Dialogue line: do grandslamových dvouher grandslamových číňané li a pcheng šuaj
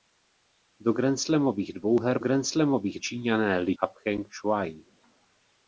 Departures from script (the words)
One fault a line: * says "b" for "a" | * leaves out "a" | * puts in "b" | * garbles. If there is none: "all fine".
all fine